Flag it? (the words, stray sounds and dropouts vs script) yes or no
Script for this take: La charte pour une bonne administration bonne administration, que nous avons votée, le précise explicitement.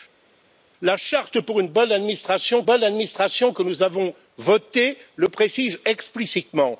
no